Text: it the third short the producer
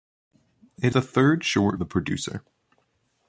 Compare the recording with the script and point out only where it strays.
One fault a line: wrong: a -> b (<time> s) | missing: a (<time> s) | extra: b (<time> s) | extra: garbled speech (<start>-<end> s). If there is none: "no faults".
no faults